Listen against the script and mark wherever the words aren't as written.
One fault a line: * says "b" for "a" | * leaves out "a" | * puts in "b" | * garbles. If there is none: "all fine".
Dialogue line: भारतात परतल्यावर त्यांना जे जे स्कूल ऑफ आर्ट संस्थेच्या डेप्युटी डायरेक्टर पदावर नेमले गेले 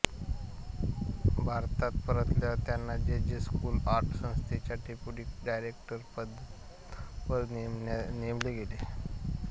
* leaves out "ऑफ"